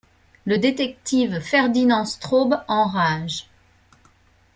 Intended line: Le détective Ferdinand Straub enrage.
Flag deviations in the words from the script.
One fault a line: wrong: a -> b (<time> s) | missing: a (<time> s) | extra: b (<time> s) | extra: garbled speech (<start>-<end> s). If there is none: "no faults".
no faults